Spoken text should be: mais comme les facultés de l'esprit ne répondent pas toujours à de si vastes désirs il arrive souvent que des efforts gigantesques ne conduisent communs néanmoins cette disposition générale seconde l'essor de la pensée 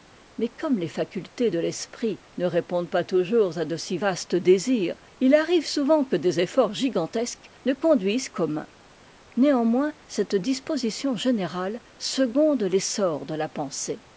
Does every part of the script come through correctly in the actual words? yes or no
yes